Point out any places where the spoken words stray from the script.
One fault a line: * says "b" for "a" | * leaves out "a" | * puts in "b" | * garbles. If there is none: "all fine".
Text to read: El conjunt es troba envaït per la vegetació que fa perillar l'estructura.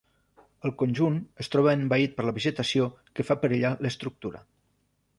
all fine